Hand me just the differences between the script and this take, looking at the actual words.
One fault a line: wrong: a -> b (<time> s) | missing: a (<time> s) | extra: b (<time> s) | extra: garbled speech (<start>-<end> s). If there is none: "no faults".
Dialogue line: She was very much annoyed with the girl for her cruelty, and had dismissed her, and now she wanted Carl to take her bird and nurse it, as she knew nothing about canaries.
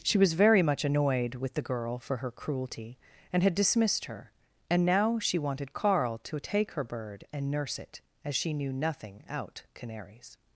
wrong: about -> out (9.3 s)